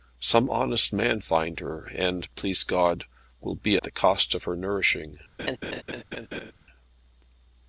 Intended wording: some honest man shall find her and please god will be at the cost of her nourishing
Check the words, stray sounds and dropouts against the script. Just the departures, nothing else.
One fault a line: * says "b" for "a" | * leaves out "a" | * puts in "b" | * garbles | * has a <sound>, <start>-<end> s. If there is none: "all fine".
* leaves out "shall"
* leaves out "at"
* has a laugh, 5.4-6.5 s